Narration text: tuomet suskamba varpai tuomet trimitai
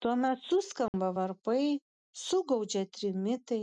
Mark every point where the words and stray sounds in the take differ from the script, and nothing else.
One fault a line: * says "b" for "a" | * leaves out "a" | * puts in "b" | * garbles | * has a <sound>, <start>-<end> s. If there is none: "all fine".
* has a dropout, 0.9-0.9 s
* says "sugaudžia" for "tuomet"